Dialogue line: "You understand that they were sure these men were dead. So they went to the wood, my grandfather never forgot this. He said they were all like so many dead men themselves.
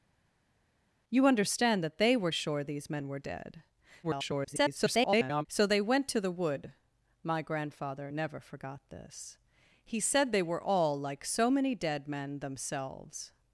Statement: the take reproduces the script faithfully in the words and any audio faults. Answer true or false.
false